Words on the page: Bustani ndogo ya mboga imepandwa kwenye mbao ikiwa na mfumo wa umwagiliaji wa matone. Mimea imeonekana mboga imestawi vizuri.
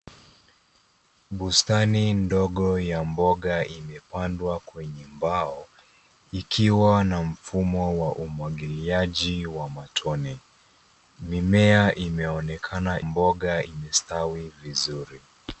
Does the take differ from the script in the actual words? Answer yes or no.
no